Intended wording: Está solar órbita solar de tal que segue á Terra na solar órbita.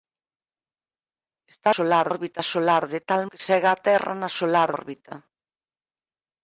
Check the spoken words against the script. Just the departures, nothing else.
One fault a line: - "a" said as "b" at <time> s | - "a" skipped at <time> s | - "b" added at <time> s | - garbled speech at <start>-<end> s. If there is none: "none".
none